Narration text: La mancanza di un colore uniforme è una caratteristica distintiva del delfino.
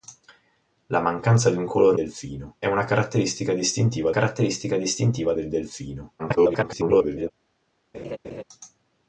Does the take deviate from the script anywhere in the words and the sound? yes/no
yes